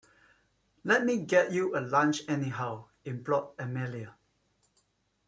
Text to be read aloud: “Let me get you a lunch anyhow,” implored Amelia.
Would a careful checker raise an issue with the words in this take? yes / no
no